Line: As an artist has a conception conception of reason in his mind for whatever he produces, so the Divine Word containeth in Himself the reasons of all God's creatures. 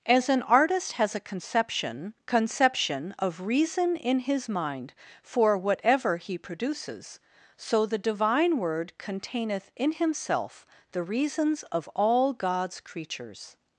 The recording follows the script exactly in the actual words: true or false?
true